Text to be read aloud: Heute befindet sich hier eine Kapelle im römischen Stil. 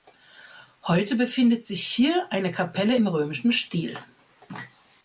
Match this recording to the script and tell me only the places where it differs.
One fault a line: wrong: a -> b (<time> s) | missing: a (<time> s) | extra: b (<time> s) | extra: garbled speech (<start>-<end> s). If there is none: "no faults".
no faults